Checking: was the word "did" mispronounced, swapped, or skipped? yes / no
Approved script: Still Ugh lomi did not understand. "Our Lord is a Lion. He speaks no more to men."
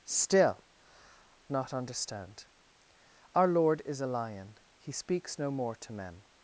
yes